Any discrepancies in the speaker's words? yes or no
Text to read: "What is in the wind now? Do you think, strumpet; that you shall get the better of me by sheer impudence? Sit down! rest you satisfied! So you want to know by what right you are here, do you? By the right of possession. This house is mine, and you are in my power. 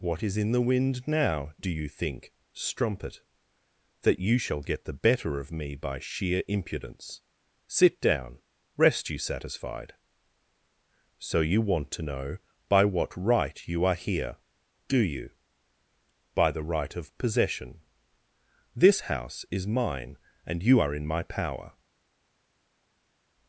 no